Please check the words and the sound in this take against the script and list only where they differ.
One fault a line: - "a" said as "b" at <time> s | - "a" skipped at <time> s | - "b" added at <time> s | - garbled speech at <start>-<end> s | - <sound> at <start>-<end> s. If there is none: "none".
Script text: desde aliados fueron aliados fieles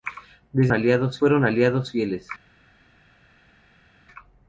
none